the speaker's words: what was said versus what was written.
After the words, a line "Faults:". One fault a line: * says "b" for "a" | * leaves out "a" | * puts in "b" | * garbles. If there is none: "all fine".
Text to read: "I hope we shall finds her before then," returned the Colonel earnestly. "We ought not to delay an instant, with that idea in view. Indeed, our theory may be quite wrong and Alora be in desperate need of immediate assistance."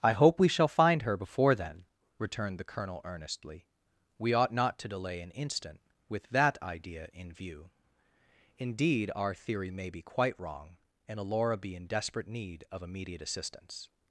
"I hope we shall find her before then," returned the Colonel earnestly. "We ought not to delay an instant, with that idea in view. Indeed, our theory may be quite wrong and Alora be in desperate need of immediate assistance."
Faults:
* says "find" for "finds"